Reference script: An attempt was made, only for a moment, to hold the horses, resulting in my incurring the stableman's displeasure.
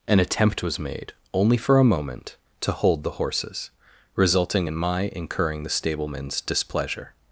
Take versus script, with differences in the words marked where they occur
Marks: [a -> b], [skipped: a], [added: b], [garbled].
An attempt was made, only for a moment, to hold the horses, resulting in my incurring the stableman's displeasure.